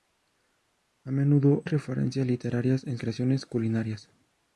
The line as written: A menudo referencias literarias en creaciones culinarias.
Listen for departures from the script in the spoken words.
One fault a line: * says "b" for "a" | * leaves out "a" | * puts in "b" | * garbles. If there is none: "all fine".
all fine